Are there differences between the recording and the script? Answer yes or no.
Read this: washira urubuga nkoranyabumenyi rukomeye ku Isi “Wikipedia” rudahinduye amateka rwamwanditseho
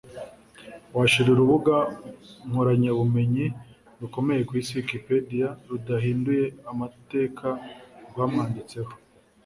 no